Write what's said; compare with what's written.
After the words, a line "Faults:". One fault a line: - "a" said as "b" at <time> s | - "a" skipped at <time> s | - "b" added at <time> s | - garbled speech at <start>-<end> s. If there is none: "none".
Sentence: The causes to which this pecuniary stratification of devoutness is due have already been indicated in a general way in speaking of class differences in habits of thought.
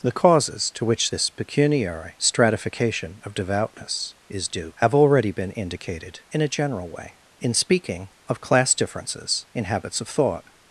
The causes to which this pecuniary stratification of devoutness is due have already been indicated in a general way in speaking of class differences in habits of thought.
Faults:
none